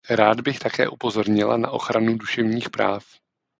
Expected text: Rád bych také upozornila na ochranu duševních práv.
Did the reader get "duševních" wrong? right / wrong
right